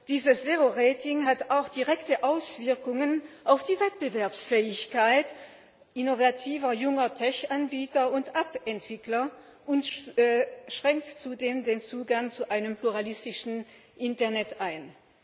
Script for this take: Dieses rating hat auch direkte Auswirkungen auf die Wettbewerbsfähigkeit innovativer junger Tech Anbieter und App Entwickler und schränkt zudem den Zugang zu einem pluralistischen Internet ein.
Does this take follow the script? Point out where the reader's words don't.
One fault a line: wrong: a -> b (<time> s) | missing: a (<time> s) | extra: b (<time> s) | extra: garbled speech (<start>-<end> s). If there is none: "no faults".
extra: zero (0.4 s)